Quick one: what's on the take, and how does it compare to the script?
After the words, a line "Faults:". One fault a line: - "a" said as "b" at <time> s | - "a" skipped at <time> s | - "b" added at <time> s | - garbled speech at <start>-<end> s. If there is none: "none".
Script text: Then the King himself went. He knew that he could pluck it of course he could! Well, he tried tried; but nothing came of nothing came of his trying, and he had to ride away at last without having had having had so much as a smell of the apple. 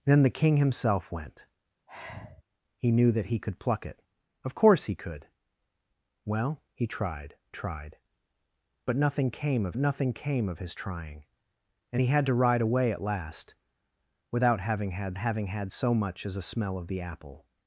Then the King himself went. He knew that he could pluck it of course he could! Well, he tried tried; but nothing came of nothing came of his trying, and he had to ride away at last without having had having had so much as a smell of the apple.
Faults:
none